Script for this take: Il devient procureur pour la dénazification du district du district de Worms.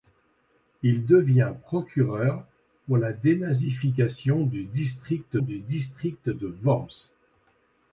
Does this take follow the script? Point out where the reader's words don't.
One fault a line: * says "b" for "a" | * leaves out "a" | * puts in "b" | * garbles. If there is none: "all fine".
all fine